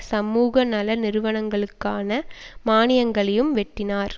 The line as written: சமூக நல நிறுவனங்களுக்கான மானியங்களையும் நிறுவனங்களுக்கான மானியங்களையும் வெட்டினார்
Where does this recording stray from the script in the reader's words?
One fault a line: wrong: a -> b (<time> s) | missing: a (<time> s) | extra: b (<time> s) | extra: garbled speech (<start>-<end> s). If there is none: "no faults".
missing: நிறுவனங்களுக்கான மானியங்களையும் (3.5 s)